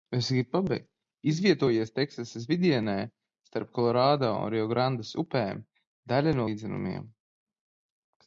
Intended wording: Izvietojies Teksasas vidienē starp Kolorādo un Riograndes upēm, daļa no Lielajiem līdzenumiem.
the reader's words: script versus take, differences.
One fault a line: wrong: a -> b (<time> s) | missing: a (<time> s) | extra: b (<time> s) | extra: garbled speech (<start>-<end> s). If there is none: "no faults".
missing: Lielajiem (6.4 s)